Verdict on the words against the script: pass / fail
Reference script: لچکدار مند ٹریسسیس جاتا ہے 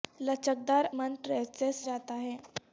pass